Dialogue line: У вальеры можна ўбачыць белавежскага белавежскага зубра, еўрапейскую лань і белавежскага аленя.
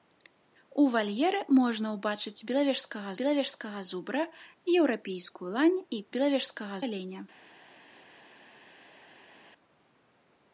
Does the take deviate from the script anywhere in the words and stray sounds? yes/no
no